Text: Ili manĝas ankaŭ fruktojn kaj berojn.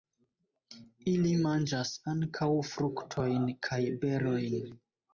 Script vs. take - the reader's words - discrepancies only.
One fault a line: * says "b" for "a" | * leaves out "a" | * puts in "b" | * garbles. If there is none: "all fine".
all fine